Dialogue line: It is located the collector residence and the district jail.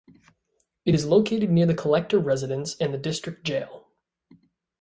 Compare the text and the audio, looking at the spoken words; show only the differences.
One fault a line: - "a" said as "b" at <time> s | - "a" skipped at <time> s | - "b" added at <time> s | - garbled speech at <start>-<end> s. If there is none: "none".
- "near" added at 1.5 s